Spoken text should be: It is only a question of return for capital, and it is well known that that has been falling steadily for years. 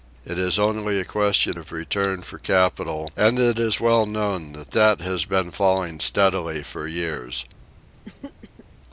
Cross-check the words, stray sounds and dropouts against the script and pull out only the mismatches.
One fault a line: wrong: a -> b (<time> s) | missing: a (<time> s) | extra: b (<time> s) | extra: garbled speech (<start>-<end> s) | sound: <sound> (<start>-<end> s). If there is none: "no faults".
sound: throat clearing (8.0-8.7 s)